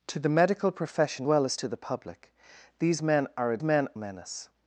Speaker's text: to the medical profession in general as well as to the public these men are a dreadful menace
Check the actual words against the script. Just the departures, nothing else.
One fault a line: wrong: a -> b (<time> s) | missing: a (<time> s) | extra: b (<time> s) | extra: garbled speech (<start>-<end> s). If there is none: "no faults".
missing: in general as (1.3 s)
wrong: dreadful -> men (3.6 s)